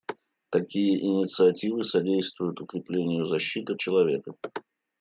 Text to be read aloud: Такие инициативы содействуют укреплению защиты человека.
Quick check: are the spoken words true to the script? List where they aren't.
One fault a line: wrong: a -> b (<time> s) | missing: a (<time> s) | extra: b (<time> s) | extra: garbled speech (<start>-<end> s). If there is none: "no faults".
no faults